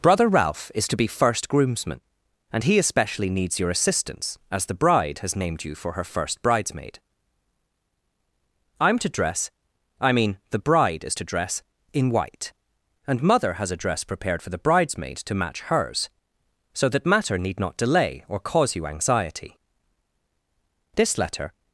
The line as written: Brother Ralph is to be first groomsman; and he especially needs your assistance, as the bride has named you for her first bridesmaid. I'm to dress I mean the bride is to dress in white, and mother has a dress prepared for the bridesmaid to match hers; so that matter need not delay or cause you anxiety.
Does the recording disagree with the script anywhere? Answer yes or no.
yes